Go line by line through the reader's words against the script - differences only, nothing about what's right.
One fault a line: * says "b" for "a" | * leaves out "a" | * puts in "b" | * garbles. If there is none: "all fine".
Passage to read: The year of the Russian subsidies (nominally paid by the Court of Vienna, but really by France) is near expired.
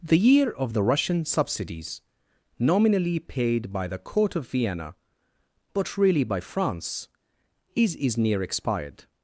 * puts in "is"